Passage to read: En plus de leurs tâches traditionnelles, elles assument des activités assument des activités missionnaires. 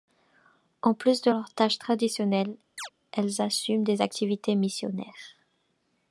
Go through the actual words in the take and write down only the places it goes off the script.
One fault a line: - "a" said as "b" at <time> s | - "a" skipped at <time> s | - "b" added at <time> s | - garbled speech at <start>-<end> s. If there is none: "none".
- "assument des activités" skipped at 4.6 s